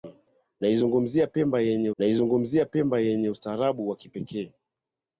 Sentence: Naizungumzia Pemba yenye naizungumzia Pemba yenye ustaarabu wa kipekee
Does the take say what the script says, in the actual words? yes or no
yes